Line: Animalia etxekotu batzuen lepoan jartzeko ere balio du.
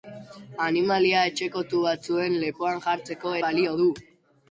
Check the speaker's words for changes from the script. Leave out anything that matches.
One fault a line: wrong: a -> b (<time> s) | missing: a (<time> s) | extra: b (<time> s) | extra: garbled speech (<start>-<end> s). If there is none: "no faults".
missing: ere (3.4 s)